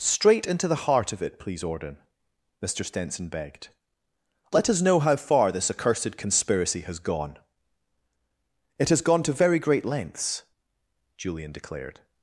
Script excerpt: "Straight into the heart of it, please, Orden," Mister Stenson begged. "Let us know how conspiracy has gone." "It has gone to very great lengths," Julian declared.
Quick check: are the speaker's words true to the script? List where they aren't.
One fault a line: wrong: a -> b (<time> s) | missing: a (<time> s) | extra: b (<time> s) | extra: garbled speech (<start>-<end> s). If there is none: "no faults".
extra: far this accursed (5.2 s)